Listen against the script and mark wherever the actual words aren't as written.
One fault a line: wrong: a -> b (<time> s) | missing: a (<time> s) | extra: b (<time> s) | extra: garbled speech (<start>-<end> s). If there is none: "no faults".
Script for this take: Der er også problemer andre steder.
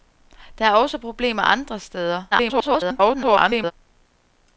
extra: garbled speech (2.3-3.7 s)